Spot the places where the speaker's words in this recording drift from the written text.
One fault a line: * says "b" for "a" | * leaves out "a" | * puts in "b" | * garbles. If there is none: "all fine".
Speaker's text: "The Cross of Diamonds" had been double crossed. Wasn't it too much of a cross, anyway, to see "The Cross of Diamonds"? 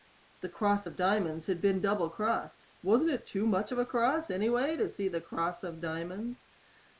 all fine